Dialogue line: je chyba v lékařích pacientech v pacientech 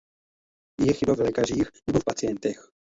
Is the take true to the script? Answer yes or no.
no